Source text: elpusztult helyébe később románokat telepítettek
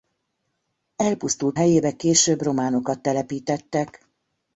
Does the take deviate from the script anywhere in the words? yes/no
no